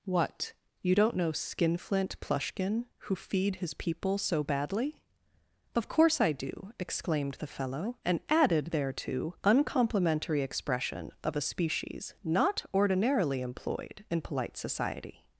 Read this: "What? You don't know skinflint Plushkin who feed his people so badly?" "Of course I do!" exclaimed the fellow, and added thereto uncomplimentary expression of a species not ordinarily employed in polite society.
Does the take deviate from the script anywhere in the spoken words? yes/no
no